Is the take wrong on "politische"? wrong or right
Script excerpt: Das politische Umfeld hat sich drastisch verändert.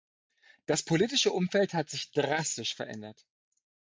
right